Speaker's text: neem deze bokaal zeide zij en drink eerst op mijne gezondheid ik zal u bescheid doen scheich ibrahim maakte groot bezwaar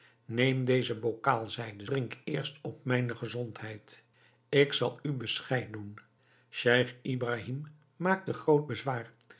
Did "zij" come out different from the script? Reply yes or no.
yes